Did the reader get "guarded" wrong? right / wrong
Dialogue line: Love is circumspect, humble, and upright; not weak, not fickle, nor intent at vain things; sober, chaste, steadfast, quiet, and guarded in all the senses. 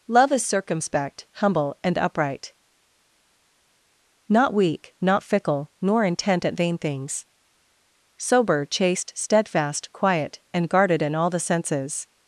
right